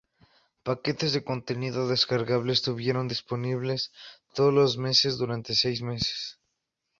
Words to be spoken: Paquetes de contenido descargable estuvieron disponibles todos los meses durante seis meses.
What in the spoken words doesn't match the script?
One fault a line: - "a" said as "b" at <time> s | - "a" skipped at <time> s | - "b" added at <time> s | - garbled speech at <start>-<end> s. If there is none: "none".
none